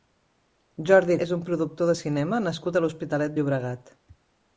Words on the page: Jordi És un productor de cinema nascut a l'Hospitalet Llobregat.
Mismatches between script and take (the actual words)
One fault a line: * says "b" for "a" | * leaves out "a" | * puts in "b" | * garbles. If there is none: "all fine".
all fine